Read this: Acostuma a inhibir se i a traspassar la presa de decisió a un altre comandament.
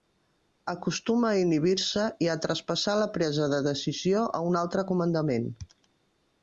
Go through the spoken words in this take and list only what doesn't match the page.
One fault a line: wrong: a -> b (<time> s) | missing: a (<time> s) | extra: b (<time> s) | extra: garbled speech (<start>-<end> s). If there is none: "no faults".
no faults